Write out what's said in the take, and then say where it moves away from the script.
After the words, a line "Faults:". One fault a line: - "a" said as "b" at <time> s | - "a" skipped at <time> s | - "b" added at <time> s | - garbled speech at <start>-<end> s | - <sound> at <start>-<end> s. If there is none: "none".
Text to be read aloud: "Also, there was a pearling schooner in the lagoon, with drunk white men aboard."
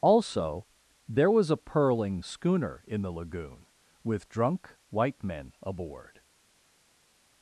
"Also, there was a pearling schooner in the lagoon, with drunk white men aboard."
Faults:
none